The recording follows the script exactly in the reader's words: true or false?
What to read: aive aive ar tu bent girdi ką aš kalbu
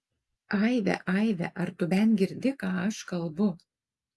true